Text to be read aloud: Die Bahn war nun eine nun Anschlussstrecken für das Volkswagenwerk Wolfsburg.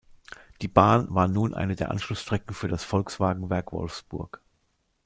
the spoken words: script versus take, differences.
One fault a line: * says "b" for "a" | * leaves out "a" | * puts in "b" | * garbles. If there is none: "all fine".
* says "der" for "nun"